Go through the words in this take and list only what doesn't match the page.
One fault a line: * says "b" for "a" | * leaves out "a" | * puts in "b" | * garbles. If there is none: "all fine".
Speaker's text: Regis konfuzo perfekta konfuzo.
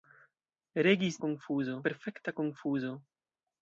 all fine